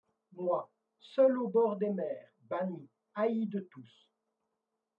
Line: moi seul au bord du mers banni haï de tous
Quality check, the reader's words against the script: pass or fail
fail